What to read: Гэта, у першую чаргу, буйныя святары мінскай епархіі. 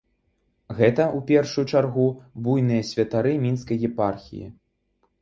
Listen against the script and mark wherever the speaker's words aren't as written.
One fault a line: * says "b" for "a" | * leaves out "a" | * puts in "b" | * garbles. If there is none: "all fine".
all fine